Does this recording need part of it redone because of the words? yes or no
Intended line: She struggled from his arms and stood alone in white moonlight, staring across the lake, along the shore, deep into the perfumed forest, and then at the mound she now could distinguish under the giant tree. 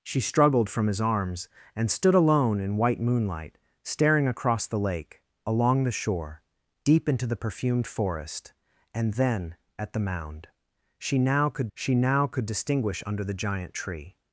yes